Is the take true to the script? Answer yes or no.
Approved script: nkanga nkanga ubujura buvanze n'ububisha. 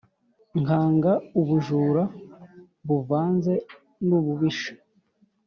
no